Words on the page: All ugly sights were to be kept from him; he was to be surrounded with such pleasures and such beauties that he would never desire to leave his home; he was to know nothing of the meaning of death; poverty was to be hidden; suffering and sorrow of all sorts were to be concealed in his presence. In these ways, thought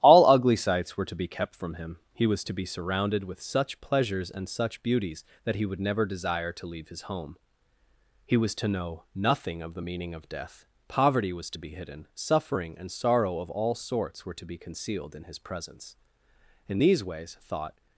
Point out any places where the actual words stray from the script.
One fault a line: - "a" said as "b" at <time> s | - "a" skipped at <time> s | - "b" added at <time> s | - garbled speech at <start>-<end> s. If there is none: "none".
none